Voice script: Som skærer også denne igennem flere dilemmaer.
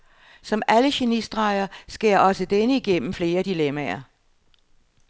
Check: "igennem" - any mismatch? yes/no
no